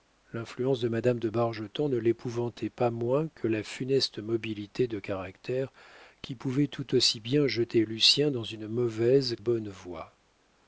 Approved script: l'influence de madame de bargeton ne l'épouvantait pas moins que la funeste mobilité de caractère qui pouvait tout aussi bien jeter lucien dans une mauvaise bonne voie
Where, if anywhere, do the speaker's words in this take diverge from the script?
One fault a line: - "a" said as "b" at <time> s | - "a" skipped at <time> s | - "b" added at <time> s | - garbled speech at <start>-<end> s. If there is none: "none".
none